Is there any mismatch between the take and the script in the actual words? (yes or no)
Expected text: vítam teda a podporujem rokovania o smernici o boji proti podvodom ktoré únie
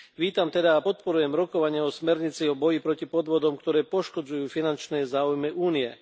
yes